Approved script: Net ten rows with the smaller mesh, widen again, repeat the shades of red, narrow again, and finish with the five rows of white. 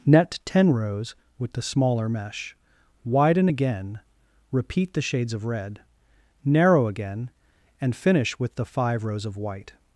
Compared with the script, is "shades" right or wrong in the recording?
right